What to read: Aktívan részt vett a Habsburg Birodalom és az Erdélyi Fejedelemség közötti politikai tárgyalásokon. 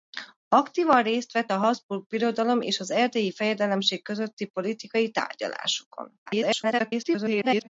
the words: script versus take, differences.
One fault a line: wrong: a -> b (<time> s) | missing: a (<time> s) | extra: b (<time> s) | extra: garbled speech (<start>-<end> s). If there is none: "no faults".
extra: garbled speech (6.3-7.7 s)